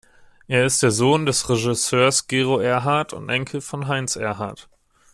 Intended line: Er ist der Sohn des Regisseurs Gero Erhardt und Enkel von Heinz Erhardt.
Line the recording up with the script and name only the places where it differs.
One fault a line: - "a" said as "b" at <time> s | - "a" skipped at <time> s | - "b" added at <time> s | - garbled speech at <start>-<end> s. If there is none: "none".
none